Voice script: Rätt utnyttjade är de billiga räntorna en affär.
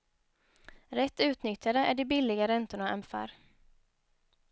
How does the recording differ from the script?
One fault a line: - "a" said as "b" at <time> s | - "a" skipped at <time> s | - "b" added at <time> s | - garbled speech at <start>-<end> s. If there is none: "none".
none